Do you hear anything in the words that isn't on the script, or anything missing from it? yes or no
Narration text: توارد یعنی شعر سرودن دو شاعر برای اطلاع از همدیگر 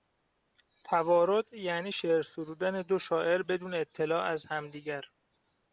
yes